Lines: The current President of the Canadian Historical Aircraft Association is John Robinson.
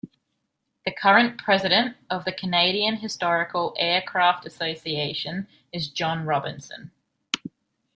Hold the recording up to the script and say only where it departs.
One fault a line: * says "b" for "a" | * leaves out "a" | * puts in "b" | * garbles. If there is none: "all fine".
all fine